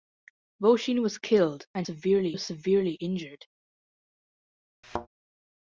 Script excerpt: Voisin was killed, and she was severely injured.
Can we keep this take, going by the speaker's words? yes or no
no